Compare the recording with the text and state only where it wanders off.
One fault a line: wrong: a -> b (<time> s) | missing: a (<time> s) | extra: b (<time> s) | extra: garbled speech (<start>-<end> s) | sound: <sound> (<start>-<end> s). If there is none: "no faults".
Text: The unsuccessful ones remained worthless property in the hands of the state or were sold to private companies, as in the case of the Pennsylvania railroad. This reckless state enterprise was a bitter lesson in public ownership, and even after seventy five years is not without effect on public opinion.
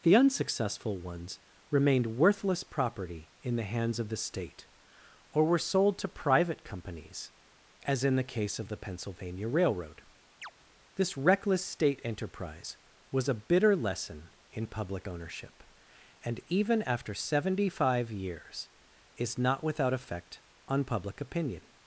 sound: chirp (10.4-10.5 s)